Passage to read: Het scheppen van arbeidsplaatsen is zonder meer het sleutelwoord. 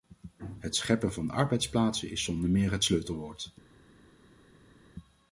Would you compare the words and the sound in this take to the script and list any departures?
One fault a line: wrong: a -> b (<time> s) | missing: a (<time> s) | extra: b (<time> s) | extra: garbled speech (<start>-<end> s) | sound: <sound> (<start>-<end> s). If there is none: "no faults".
no faults